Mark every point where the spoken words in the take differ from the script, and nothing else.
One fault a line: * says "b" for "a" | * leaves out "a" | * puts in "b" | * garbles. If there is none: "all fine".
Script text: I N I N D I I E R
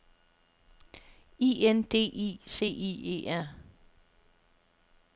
* leaves out "I N"
* puts in "C"